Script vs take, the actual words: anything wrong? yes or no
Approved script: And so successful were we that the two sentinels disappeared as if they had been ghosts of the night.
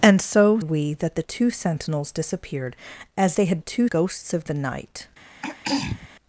yes